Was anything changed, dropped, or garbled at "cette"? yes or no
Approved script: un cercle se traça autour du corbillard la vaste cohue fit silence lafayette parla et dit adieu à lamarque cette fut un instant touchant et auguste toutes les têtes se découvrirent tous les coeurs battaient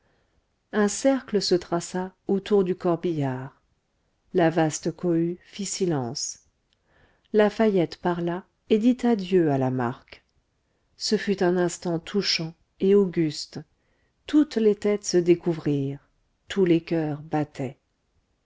yes